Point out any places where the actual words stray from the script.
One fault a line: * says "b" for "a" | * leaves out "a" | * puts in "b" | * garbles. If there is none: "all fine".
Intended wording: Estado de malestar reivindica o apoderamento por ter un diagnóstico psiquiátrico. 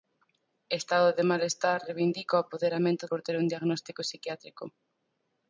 all fine